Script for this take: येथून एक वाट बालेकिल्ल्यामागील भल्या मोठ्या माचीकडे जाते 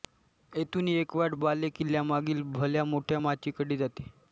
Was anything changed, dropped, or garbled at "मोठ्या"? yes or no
no